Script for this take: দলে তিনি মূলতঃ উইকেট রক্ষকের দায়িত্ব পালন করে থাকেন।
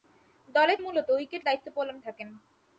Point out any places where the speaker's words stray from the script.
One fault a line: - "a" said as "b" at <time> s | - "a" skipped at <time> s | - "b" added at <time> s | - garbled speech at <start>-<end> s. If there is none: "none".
- "তিনি" skipped at 0.8 s
- "রক্ষকের" skipped at 1.4 s
- "করে" skipped at 2.0 s